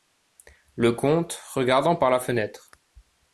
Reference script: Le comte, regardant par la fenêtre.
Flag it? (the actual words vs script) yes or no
no